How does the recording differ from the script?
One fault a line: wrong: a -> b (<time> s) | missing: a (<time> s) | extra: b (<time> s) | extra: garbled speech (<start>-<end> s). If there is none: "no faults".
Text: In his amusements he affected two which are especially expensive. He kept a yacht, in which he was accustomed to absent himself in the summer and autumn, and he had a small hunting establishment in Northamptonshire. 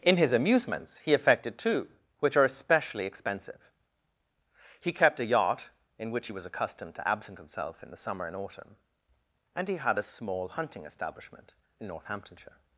no faults